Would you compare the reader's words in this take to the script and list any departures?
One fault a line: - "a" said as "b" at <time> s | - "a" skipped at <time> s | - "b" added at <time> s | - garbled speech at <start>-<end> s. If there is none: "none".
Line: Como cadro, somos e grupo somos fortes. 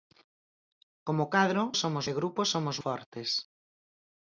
none